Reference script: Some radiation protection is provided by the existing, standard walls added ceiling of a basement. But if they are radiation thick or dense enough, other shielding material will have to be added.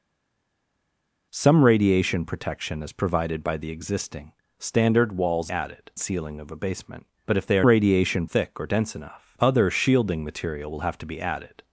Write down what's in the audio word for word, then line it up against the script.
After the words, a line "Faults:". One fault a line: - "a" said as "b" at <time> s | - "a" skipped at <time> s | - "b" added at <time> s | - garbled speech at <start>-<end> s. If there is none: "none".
Some radiation protection is provided by the existing, standard walls added ceiling of a basement. But if they are radiation thick or dense enough, other shielding material will have to be added.
Faults:
none